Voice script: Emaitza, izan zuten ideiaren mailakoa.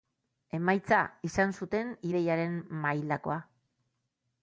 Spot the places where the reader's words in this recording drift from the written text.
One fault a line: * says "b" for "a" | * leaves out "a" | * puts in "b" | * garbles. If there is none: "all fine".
all fine